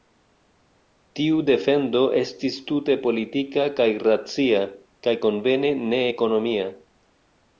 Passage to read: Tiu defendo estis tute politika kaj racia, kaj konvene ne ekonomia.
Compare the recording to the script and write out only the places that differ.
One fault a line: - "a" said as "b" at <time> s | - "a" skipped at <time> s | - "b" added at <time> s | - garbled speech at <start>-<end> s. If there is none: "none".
none